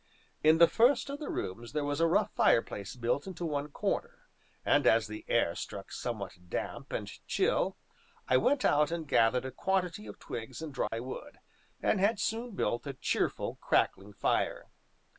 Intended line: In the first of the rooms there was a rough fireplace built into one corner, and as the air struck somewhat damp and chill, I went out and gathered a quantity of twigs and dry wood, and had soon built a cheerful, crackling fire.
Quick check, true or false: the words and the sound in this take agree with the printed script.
false